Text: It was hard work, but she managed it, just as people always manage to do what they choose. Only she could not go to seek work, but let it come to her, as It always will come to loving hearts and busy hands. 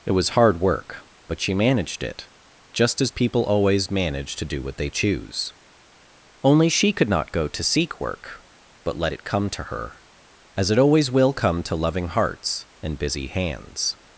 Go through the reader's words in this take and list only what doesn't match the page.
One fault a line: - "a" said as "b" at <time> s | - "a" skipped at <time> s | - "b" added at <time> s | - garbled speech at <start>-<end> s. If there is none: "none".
none